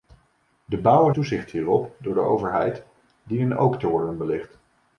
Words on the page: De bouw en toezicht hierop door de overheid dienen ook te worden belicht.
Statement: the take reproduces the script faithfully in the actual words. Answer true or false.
true